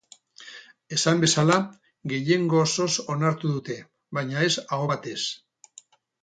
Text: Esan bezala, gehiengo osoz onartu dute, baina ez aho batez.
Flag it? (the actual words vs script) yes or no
no